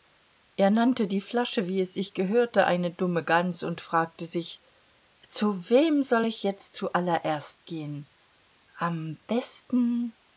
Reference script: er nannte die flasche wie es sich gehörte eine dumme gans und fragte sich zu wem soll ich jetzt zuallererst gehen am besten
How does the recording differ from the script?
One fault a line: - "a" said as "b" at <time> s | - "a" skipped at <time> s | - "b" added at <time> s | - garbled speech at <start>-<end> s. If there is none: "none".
none